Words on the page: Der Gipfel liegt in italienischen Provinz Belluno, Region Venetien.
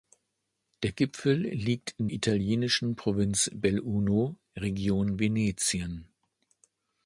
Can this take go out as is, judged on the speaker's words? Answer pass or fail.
pass